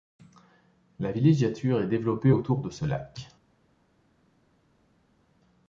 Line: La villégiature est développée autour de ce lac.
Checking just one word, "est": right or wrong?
right